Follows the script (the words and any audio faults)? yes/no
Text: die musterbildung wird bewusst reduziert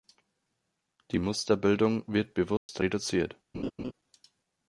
no